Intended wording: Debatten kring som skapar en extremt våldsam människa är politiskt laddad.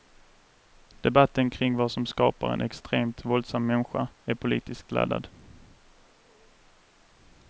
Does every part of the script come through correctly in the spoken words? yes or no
no